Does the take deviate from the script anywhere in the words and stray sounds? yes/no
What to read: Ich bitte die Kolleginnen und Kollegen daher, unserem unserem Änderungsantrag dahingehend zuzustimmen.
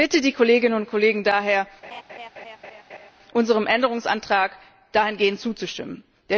yes